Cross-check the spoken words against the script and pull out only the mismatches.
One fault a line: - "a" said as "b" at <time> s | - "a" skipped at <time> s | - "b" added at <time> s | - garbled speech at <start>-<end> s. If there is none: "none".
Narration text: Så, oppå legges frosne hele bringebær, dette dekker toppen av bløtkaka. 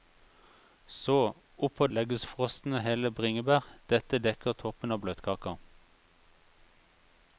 none